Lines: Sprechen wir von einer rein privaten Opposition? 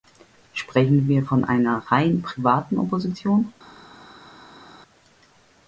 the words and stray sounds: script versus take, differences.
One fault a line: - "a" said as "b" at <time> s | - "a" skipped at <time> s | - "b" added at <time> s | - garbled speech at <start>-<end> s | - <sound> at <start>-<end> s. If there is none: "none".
none